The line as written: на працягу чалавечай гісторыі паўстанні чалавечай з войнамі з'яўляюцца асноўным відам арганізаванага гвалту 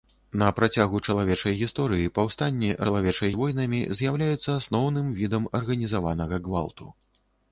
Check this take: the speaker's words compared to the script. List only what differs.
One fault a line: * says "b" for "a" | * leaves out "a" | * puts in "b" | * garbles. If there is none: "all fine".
all fine